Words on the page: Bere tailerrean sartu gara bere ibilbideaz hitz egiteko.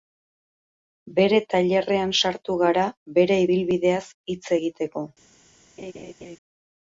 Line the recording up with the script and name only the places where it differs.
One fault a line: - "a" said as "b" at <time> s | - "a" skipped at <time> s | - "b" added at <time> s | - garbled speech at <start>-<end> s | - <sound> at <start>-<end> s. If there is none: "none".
- laugh at 5.8-6.4 s